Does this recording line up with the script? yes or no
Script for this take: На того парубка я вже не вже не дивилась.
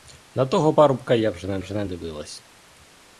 yes